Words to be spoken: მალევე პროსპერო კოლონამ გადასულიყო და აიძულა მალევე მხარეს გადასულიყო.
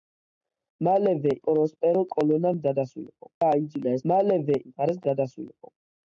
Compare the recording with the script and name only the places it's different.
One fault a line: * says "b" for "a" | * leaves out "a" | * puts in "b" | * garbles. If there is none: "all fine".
all fine